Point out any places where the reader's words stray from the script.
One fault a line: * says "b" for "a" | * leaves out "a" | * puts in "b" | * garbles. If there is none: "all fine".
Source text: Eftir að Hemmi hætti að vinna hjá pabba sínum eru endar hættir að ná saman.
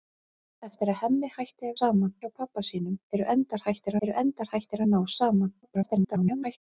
* says "saman" for "vinna"
* puts in "eru endar hættir"
* garbles